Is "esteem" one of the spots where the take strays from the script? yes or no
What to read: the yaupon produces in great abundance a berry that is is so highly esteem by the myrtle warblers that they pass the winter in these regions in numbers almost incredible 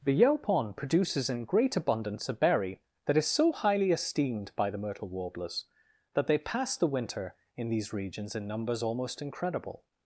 yes